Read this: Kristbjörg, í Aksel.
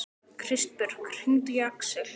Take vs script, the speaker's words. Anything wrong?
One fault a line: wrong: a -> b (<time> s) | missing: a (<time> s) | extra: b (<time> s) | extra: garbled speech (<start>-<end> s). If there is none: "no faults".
extra: hringdu (1.2 s)